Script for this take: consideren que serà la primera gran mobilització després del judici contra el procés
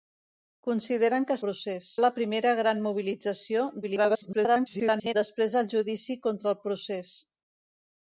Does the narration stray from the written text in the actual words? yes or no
yes